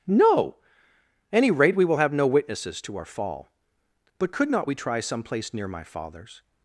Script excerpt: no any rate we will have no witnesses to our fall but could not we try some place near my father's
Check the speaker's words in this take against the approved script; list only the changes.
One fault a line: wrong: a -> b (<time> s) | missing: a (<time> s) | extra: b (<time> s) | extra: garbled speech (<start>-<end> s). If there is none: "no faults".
no faults